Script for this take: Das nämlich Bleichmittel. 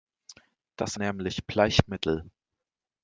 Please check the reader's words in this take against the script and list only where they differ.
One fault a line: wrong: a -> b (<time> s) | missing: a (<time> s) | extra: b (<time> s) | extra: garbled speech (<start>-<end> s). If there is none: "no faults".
no faults